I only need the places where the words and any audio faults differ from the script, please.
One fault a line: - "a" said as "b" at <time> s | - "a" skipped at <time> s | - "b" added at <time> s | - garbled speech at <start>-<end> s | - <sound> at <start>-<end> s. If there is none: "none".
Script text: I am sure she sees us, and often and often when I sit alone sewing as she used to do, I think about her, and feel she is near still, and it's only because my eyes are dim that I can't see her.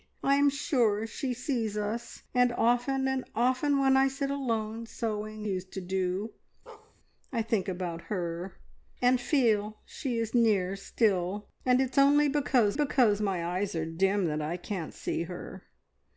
- "as she" skipped at 5.5 s
- bark at 6.7-6.9 s
- "because" added at 12.7 s